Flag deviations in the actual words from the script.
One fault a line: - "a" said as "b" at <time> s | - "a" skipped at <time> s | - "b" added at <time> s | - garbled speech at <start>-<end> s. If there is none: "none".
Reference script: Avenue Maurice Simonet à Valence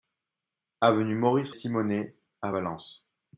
none